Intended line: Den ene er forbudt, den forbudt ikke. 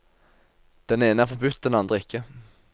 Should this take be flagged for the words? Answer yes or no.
yes